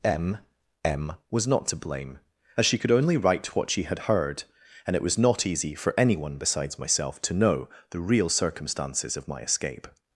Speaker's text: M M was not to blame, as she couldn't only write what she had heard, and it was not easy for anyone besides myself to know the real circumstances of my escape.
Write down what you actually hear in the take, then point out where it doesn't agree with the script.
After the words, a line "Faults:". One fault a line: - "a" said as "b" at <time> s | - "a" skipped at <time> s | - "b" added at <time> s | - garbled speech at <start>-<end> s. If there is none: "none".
M M was not to blame, as she could only write what she had heard, and it was not easy for anyone besides myself to know the real circumstances of my escape.
Faults:
- "couldn't" said as "could" at 2.8 s